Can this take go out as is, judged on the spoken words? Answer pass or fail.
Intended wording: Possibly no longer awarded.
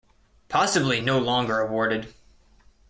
pass